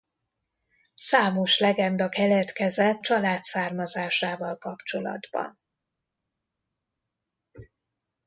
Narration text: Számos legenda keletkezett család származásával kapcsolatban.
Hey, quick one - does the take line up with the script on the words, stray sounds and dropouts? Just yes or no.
yes